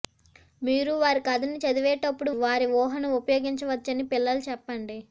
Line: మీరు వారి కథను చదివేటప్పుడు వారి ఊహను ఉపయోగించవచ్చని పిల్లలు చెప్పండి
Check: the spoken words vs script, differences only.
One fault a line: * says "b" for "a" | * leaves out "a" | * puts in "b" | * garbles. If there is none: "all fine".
all fine